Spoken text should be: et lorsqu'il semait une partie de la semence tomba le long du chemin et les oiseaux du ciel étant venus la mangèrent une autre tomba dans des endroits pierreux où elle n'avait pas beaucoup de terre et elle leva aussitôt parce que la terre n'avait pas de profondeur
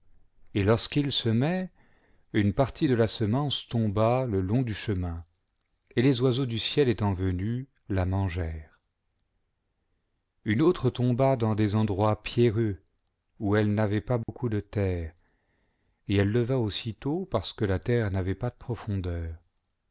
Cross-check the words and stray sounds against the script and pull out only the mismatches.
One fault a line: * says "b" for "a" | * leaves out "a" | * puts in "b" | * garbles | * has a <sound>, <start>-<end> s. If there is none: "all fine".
* has a dropout, 14.2-14.3 s